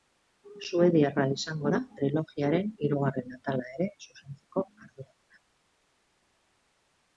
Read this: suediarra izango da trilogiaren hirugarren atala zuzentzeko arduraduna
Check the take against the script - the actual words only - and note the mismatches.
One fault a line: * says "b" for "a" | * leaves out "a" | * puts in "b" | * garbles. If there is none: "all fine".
* puts in "ere"